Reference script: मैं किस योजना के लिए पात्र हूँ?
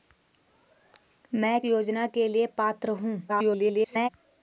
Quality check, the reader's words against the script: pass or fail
fail